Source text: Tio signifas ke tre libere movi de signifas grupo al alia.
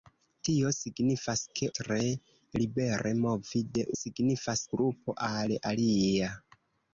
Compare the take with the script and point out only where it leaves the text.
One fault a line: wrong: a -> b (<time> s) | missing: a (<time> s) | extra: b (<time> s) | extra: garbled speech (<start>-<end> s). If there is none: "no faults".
no faults